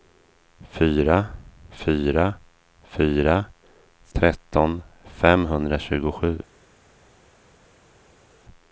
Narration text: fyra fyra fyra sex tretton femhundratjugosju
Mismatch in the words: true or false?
true